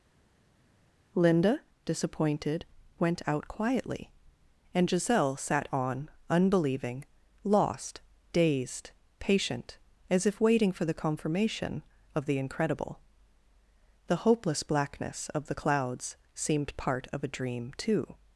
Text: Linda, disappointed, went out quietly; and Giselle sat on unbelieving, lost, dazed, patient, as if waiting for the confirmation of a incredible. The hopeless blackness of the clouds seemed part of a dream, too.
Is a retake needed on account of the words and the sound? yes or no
yes